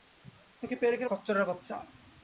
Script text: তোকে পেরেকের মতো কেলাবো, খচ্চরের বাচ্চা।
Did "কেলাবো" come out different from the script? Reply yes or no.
yes